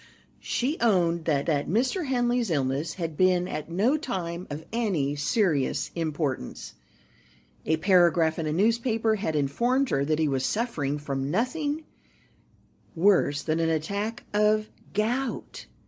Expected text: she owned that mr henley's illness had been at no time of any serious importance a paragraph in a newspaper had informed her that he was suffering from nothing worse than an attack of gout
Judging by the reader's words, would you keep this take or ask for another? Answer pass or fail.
fail